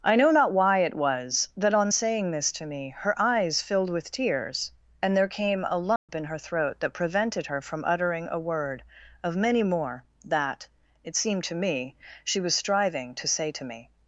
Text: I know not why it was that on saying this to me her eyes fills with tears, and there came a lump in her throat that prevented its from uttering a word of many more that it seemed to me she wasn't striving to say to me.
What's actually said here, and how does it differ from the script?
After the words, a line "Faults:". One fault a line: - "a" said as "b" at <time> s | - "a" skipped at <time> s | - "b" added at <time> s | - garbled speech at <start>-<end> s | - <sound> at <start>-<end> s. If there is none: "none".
I know not why it was that on saying this to me her eyes filled with tears, and there came a lump in her throat that prevented her from uttering a word of many more that it seemed to me she was striving to say to me.
Faults:
- "fills" said as "filled" at 3.6 s
- dropout at 6.0-6.1 s
- "its" said as "her" at 7.4 s
- "wasn't" said as "was" at 12.4 s